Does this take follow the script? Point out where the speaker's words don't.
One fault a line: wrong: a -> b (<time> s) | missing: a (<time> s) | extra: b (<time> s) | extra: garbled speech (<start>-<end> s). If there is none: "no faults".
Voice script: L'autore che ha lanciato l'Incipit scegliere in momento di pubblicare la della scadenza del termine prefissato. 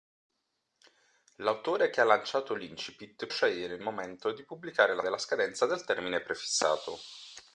no faults